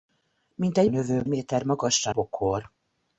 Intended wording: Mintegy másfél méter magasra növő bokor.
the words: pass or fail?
fail